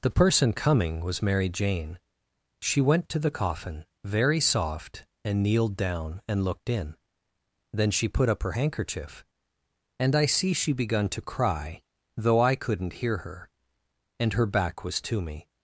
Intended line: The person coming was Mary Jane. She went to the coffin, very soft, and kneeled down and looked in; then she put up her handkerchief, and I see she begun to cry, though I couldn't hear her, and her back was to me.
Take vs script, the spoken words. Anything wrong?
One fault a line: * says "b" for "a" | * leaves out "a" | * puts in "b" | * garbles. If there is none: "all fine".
all fine